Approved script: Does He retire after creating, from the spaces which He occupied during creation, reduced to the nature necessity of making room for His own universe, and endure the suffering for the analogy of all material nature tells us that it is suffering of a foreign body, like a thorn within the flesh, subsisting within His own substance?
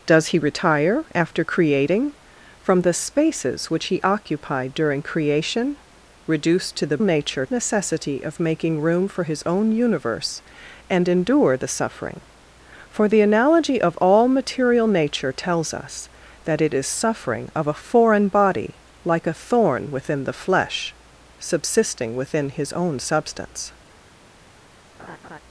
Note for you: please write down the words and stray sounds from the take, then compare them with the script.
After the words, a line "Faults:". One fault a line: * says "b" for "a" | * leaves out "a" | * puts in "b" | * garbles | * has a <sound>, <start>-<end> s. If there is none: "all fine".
Does He retire after creating, from the spaces which He occupied during creation, reduced to the nature necessity of making room for His own universe, and endure the suffering for the analogy of all material nature tells us that it is suffering of a foreign body, like a thorn within the flesh, subsisting within His own substance?
Faults:
* has a laugh, 25.0-25.4 s